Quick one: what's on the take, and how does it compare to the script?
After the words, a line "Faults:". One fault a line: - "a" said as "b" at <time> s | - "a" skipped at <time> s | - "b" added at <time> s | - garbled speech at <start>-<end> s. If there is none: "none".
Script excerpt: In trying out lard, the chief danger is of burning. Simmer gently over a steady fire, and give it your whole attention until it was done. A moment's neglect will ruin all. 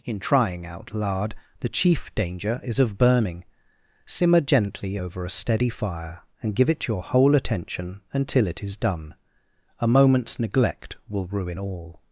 In trying out lard, the chief danger is of burning. Simmer gently over a steady fire, and give it your whole attention until it is done. A moment's neglect will ruin all.
Faults:
- "was" said as "is" at 8.6 s